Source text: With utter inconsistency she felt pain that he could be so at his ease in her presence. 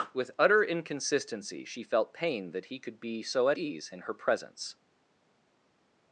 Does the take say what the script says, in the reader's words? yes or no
no